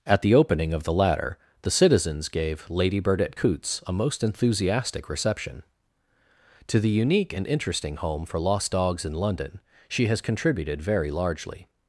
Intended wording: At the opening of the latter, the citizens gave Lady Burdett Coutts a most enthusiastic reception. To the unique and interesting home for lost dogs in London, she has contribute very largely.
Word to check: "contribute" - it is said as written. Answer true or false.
false